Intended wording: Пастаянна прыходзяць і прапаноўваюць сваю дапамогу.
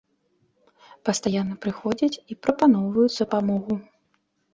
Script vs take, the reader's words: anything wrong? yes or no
yes